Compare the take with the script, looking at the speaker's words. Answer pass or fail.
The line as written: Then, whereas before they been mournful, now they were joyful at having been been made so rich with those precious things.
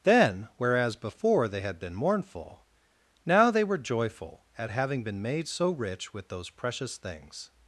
fail